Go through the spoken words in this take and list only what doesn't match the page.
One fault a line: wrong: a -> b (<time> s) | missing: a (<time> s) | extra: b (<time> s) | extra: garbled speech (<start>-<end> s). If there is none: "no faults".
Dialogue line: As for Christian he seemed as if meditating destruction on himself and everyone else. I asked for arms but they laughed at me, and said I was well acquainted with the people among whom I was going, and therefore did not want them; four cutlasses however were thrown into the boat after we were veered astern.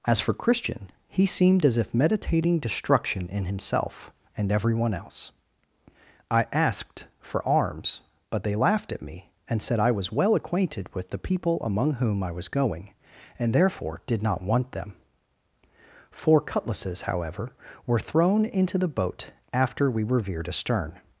wrong: on -> in (3.3 s)